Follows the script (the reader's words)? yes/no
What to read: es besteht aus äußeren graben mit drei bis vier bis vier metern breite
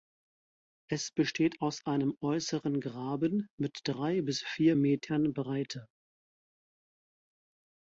no